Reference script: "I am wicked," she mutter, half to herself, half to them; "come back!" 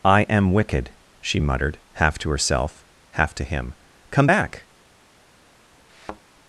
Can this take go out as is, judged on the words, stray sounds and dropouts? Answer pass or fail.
fail